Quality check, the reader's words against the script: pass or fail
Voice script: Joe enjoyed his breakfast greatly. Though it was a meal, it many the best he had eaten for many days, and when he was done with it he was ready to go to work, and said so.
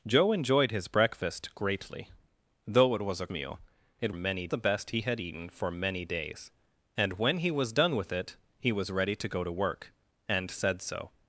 pass